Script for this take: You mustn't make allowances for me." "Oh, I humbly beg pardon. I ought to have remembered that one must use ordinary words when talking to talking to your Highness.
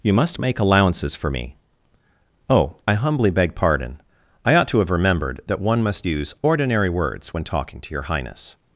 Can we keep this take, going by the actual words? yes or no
no